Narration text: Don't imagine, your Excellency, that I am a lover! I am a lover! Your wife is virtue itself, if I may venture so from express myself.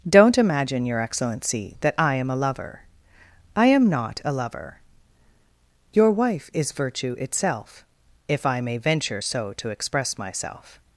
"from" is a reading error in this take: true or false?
true